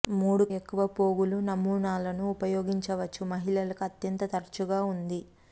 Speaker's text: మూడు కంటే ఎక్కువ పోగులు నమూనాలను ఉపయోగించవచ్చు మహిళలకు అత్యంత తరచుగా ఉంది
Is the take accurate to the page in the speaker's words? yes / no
no